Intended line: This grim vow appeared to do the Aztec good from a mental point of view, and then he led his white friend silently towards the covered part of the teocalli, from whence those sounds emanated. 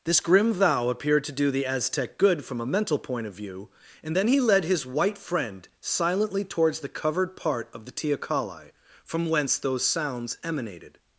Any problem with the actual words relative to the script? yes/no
no